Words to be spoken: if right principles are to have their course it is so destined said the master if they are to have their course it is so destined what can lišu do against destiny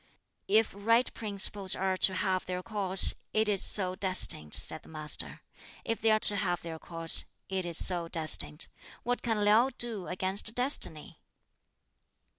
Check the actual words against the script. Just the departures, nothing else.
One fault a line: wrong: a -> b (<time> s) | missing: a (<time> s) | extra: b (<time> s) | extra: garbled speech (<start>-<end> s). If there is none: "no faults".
no faults